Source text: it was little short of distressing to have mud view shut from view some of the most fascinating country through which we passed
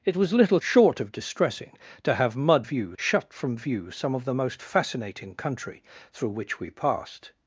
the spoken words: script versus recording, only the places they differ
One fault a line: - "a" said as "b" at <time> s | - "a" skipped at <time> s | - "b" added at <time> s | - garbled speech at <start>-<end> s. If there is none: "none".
none